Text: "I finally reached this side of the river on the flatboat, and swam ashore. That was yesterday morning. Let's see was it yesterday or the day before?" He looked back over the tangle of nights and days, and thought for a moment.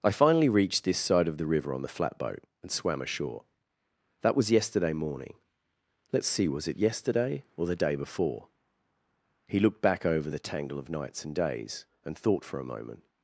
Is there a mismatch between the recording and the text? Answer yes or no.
no